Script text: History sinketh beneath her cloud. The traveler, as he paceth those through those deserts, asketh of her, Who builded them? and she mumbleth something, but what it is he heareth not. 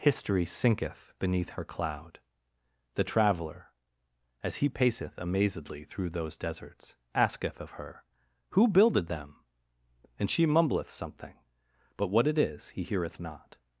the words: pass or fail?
fail